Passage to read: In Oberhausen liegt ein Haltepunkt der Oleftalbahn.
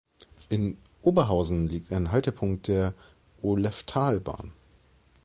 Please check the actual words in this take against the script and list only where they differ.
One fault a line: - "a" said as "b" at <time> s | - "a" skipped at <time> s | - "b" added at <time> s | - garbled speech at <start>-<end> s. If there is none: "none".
none